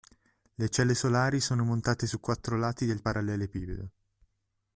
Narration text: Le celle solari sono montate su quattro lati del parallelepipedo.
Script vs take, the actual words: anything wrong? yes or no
no